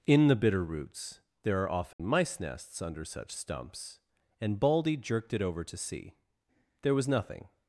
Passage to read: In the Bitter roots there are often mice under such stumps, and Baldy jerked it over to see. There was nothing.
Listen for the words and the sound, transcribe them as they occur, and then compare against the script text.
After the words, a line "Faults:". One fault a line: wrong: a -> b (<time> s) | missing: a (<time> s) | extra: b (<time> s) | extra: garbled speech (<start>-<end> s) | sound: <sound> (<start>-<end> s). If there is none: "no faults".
In the Bitter roots there are often mice nests under such stumps, and Baldy jerked it over to see. There was nothing.
Faults:
sound: dropout (1.9-2.0 s)
extra: nests (2.4 s)